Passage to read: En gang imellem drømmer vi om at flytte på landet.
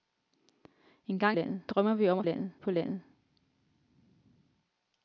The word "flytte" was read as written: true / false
false